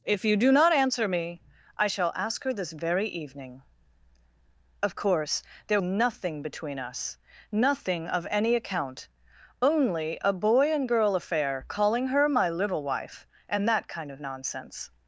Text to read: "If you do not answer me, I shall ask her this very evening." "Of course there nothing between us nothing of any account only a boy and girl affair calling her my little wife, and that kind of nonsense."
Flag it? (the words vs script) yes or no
no